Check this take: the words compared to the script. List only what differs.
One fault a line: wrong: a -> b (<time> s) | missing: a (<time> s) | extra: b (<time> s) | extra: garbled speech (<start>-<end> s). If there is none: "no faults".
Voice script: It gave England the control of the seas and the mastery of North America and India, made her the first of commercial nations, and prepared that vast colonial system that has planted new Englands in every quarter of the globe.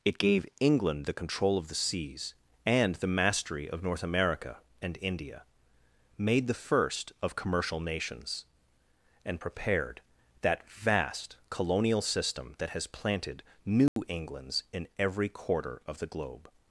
missing: her (6.5 s)